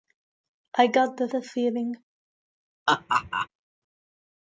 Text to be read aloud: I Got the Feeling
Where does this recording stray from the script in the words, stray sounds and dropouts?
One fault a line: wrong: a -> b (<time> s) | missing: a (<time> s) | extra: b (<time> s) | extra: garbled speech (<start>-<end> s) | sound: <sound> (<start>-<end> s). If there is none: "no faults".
extra: the (1.3 s)
sound: laugh (2.9-3.5 s)